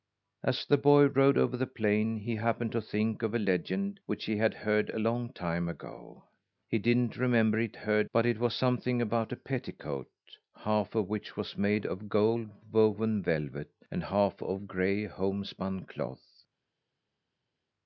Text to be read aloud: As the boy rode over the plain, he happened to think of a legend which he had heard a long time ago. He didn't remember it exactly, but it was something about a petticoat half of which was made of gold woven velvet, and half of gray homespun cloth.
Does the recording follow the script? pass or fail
fail